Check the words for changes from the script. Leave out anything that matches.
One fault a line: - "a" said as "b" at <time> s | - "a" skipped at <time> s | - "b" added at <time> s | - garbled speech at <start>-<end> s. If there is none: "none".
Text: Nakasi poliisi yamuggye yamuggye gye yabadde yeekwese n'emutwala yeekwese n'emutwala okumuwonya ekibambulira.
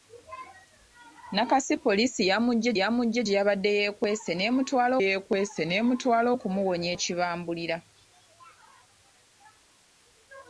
none